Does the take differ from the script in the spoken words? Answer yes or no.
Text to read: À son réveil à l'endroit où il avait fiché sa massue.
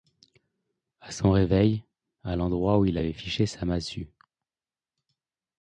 no